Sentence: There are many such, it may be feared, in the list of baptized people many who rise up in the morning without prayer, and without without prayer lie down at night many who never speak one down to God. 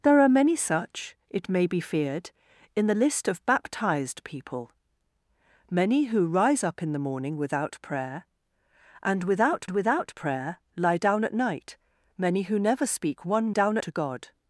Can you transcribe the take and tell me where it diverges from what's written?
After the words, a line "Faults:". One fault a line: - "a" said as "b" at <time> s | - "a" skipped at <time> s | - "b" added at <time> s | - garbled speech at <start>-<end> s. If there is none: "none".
There are many such, it may be feared, in the list of baptized people many who rise up in the morning without prayer, and without without prayer lie down at night many who never speak one down to God.
Faults:
none